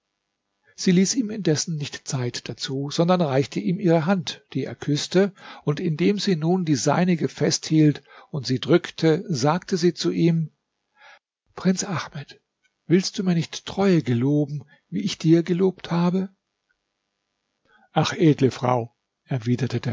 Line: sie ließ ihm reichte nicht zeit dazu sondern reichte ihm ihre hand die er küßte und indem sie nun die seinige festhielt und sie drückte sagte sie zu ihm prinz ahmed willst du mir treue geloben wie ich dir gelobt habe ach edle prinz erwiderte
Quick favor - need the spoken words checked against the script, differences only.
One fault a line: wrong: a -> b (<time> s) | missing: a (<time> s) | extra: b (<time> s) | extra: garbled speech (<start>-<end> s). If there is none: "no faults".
wrong: reichte -> indessen (1.3 s)
extra: nicht (13.4 s)
wrong: prinz -> frau (18.5 s)